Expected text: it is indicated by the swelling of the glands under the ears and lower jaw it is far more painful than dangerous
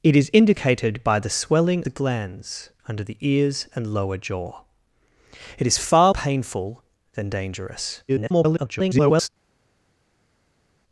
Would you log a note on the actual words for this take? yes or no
yes